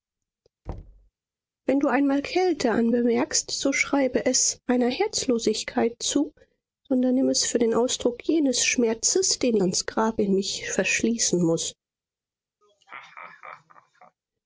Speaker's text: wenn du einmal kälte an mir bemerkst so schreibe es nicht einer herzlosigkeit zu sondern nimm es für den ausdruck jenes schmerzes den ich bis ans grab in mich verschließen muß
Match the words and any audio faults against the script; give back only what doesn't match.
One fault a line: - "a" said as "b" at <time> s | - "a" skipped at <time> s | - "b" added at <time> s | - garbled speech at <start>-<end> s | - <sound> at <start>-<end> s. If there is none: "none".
- thud at 0.7-1.1 s
- "mir" skipped at 2.9 s
- "nicht" skipped at 4.6 s
- "ich bis" skipped at 9.6 s
- laugh at 12.6-14.2 s